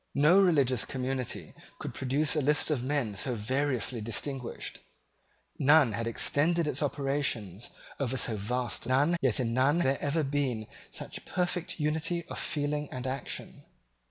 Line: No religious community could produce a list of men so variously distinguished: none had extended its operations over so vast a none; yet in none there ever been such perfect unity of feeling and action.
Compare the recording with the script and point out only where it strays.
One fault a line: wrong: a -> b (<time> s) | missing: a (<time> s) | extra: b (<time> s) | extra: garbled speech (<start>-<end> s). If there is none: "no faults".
no faults